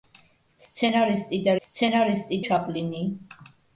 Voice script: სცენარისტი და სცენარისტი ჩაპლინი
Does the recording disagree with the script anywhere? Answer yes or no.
no